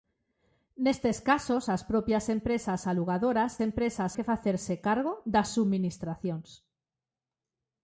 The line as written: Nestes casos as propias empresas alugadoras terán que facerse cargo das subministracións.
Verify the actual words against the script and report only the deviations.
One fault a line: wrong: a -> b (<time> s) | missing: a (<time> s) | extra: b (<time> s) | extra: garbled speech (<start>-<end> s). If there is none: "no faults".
wrong: terán -> empresas (3.7 s)